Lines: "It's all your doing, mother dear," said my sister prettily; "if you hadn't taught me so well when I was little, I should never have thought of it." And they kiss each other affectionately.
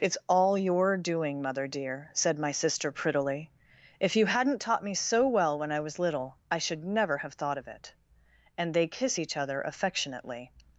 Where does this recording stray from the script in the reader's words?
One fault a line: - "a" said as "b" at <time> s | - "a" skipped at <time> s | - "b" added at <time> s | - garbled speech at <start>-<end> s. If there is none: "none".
none